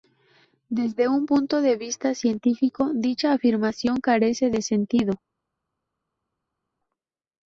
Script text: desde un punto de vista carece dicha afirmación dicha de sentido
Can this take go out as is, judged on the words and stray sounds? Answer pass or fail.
fail